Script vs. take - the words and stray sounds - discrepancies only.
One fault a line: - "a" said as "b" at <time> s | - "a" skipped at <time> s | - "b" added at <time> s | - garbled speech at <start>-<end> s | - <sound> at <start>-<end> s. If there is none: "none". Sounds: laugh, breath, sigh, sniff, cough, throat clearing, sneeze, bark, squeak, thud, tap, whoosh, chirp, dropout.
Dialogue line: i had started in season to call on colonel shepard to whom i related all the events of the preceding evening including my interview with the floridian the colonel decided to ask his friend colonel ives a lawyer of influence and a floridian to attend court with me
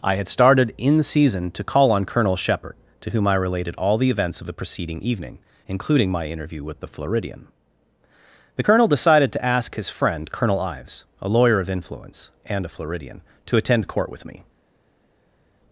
none